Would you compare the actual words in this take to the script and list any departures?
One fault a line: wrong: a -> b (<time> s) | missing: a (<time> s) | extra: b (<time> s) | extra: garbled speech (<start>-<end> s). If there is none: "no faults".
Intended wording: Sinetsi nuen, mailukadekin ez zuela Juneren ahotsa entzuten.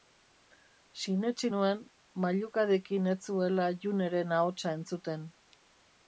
no faults